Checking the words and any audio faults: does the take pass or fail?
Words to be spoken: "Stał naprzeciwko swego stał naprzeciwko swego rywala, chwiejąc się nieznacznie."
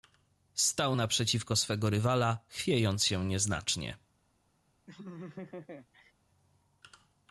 fail